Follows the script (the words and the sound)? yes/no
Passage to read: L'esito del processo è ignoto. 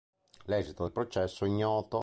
yes